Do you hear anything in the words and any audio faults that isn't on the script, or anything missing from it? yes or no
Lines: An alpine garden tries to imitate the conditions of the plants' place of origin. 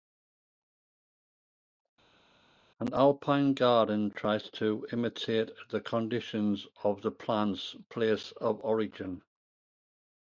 no